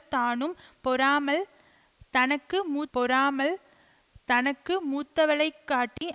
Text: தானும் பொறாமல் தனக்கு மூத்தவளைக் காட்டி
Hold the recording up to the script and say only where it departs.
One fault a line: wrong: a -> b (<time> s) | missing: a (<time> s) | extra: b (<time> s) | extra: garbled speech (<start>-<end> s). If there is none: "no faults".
extra: பொறாமல் தனக்கு (2.9 s)